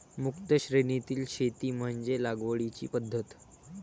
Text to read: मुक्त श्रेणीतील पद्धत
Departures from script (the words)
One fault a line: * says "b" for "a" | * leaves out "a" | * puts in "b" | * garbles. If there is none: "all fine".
* puts in "शेती म्हणजे लागवडीची"